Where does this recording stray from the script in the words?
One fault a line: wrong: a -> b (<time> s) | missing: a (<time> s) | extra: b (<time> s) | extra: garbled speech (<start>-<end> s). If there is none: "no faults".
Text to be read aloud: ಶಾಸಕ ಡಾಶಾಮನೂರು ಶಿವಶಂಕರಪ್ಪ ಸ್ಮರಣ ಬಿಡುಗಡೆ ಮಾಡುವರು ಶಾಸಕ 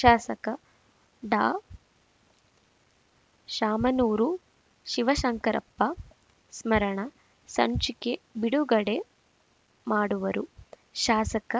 extra: ಸಂಚಿಕೆ (7.5 s)